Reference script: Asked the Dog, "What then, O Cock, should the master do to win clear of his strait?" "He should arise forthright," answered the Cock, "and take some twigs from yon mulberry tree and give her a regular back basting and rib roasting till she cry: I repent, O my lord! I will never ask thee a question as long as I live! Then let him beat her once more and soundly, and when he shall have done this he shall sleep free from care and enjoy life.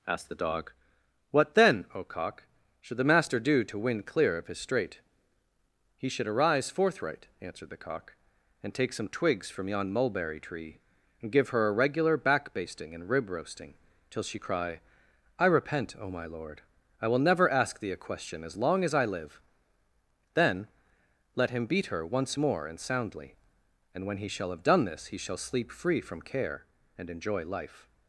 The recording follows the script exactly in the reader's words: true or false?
true